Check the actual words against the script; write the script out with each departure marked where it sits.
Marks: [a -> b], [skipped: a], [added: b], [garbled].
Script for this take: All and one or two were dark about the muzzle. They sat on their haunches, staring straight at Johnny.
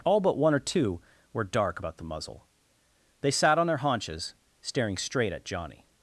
All [and -> but] one or two were dark about the muzzle. They sat on their haunches, staring straight at Johnny.